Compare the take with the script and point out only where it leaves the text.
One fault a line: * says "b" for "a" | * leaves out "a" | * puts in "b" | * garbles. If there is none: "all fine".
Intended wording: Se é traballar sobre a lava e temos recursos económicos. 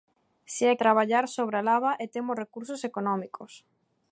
all fine